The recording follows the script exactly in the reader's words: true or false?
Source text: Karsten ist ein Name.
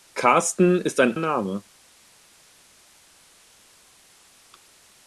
true